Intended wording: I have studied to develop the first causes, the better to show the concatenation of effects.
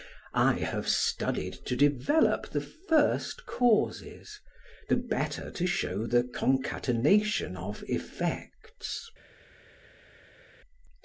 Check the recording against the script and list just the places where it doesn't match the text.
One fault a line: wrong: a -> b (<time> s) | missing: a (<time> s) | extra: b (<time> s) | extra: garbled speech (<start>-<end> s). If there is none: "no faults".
no faults